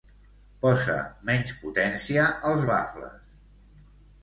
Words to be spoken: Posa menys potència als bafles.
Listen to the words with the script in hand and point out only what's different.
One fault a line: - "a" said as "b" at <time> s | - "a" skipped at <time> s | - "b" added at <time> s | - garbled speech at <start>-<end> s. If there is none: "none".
none